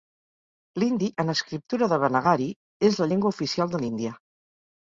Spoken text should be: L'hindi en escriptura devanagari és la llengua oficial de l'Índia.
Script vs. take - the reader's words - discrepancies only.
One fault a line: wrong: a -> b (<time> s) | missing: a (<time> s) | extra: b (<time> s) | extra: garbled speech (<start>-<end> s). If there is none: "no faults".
no faults